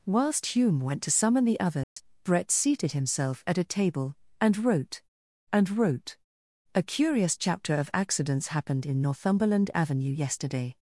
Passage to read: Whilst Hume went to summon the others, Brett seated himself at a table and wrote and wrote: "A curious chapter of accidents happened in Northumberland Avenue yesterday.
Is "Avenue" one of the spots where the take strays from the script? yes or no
no